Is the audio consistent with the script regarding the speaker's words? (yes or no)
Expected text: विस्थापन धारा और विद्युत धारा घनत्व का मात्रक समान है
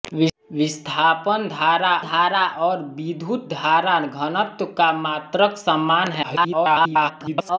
no